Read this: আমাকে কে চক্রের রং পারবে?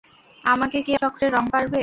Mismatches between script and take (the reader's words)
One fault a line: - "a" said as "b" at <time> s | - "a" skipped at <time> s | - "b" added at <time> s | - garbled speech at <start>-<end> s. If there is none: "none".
none